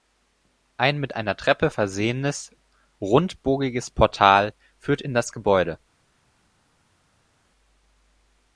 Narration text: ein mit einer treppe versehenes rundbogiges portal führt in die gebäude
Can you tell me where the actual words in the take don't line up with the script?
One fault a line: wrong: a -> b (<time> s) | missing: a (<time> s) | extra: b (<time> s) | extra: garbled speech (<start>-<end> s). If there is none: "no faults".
wrong: die -> das (5.2 s)